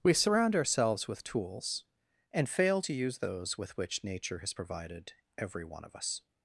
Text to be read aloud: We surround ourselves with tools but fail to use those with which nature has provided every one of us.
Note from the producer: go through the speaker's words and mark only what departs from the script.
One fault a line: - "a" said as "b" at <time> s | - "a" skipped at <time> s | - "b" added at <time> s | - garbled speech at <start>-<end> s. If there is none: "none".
- "but" said as "and" at 2.3 s